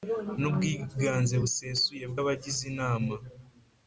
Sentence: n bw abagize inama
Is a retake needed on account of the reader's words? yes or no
yes